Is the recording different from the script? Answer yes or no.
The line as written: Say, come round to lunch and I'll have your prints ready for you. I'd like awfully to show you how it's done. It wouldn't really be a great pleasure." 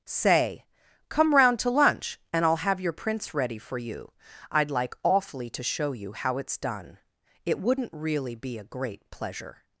no